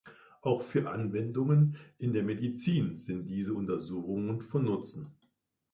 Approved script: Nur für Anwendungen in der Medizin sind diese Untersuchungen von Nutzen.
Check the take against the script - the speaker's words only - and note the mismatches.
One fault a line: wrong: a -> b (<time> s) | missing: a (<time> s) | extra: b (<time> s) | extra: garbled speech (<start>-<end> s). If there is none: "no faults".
wrong: Nur -> Auch (0.4 s)